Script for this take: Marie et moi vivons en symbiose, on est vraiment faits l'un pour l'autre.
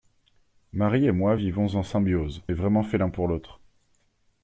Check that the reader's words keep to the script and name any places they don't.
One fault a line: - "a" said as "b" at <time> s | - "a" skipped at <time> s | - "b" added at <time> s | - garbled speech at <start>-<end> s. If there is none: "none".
- "on" skipped at 2.4 s